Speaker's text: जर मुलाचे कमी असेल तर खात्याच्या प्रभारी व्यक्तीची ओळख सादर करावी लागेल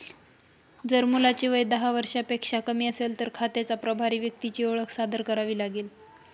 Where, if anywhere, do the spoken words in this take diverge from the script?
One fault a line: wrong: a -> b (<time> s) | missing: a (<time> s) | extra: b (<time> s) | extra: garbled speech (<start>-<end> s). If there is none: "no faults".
extra: वय दहा वर्षांपेक्षा (1.5 s)